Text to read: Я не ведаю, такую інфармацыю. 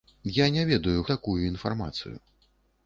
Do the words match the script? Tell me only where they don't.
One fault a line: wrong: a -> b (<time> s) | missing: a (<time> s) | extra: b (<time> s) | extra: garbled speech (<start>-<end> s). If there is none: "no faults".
no faults